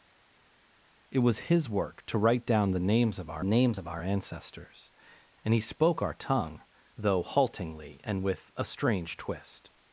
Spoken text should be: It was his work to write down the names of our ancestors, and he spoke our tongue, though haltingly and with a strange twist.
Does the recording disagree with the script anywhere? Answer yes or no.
yes